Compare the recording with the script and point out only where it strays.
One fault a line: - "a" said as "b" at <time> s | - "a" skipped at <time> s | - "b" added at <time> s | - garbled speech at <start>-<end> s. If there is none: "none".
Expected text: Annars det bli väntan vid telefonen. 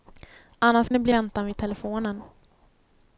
none